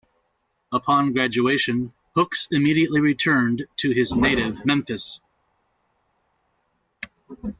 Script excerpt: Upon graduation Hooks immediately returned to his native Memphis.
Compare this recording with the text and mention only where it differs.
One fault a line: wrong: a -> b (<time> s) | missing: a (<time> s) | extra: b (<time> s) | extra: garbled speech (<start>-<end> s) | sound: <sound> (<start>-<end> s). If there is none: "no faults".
no faults